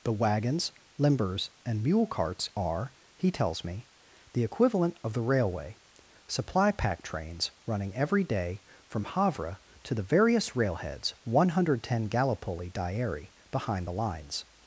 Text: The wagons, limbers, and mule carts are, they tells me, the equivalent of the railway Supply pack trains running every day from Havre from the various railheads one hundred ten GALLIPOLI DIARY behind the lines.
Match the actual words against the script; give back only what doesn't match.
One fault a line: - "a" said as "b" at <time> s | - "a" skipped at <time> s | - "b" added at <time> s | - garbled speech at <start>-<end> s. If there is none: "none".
- "they" said as "he" at 3.2 s
- "from" said as "to" at 9.8 s